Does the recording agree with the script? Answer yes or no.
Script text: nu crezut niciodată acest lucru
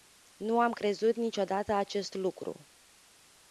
no